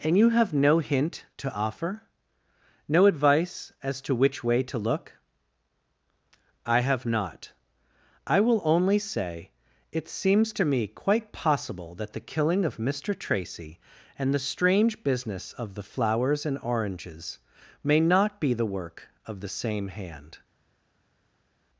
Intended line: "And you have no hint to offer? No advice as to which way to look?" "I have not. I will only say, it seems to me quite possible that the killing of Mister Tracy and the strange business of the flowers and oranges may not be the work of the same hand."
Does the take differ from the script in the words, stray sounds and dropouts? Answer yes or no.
no